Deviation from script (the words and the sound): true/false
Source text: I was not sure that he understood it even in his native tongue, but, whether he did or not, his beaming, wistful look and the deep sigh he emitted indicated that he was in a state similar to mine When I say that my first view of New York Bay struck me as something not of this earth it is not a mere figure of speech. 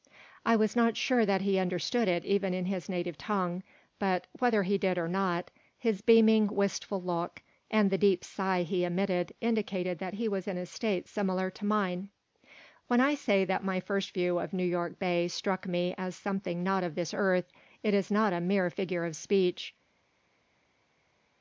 false